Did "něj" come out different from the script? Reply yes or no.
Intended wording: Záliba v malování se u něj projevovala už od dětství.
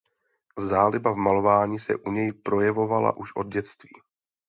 no